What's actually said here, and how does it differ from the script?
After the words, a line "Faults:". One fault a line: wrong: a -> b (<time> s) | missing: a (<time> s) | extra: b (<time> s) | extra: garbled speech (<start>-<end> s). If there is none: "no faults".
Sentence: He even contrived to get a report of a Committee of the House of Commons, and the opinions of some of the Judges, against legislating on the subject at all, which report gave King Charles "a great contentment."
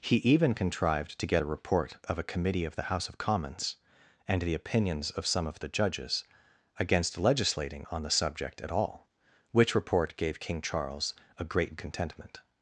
He even contrived to get a report of a Committee of the House of Commons, and the opinions of some of the Judges, against legislating on the subject at all, which report gave King Charles "a great contentment."
Faults:
no faults